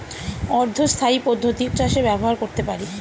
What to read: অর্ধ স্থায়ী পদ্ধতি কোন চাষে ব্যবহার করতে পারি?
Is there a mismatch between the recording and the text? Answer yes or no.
yes